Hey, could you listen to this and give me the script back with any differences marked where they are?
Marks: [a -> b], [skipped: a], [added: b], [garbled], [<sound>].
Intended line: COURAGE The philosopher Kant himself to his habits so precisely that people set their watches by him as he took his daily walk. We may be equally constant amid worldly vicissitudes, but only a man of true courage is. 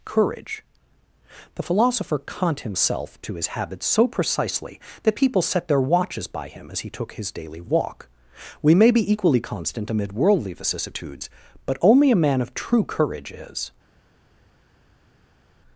COURAGE The philosopher Kant himself to his habits so precisely that people set their watches by him as he took his daily walk. We may be equally constant amid worldly vicissitudes, but only a man of true courage is.